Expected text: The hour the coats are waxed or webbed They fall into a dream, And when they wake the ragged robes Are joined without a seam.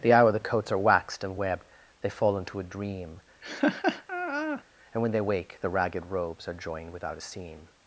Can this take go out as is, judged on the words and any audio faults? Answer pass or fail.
fail